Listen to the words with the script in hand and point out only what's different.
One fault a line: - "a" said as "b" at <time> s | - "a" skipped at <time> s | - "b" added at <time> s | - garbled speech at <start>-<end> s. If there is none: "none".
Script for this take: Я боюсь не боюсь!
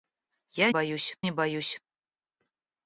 none